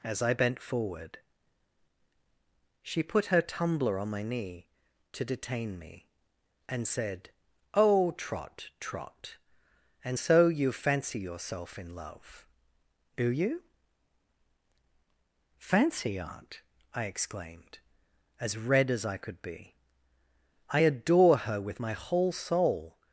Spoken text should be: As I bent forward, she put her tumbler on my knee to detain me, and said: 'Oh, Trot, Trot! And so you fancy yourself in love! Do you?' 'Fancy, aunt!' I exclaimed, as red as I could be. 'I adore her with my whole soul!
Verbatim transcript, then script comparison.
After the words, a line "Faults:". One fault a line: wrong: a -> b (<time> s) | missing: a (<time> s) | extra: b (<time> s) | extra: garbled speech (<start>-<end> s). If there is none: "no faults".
As I bent forward, she put her tumbler on my knee to detain me, and said: 'Oh, Trot, Trot! And so you fancy yourself in love! Do you?' 'Fancy, aunt!' I exclaimed, as red as I could be. 'I adore her with my whole soul!
Faults:
no faults